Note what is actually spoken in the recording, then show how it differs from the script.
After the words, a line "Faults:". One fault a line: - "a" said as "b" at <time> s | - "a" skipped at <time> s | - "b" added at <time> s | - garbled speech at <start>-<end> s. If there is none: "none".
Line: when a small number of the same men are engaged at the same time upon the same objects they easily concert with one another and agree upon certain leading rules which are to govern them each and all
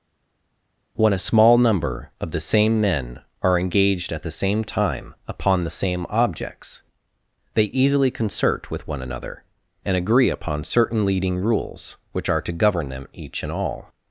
when a small number of the same men are engaged at the same time upon the same objects they easily concert with one another and agree upon certain leading rules which are to govern them each and all
Faults:
none